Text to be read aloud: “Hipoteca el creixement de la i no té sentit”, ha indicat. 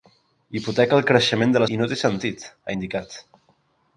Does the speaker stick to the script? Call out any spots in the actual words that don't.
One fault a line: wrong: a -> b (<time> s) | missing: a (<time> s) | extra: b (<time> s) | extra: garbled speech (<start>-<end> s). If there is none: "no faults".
no faults